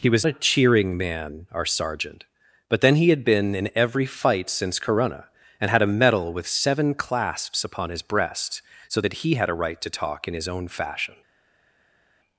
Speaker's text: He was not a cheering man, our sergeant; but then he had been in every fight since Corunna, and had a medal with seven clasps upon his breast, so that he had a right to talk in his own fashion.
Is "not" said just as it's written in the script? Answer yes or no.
no